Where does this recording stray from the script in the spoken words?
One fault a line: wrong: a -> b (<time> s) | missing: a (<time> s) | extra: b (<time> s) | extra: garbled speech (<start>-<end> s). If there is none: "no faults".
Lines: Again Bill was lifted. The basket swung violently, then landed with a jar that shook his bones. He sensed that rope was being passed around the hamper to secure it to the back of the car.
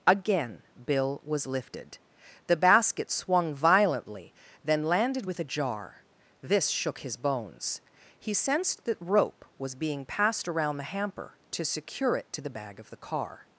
wrong: that -> this (6.4 s)
wrong: back -> bag (12.5 s)